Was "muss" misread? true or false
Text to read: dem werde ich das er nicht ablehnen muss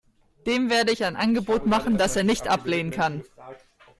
true